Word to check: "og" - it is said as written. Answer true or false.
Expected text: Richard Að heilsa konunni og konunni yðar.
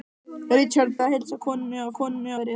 true